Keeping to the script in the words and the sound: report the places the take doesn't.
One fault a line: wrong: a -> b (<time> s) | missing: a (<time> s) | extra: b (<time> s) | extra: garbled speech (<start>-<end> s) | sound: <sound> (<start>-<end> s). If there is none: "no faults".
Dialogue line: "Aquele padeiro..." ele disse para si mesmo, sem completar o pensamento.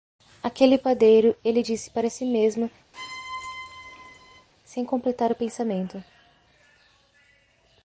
sound: squeak (2.9-4.5 s)